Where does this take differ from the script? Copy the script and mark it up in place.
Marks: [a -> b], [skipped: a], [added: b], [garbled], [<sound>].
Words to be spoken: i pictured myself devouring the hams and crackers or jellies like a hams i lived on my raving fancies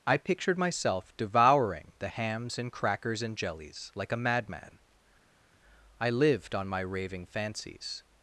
i pictured myself devouring the hams and crackers [or -> and] jellies like a [hams -> madman] i lived on my raving fancies